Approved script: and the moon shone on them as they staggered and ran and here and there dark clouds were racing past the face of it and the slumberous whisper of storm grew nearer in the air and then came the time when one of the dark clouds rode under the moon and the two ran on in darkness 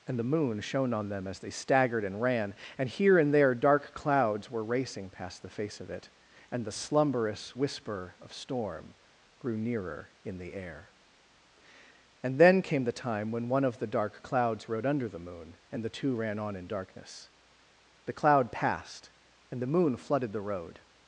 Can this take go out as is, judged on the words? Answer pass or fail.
fail